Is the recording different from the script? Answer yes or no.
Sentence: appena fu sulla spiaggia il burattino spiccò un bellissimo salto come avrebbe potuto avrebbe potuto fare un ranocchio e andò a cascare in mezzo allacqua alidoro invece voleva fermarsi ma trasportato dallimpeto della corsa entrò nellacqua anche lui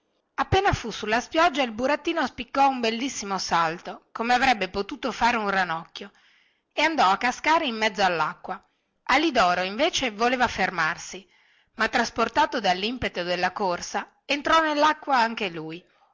yes